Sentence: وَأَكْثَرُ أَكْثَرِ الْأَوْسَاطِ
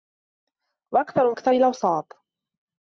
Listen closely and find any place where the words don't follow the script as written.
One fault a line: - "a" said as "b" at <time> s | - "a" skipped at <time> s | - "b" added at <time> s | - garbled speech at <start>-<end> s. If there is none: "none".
none